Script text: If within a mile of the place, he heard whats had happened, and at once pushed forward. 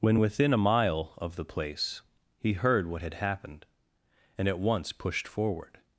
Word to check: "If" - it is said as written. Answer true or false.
false